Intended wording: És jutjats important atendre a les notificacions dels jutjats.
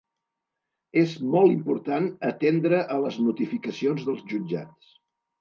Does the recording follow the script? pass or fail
fail